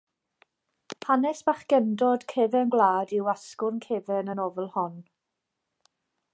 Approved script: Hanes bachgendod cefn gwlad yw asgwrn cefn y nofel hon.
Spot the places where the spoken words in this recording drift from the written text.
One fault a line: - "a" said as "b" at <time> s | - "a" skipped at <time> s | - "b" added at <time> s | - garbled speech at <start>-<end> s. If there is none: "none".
none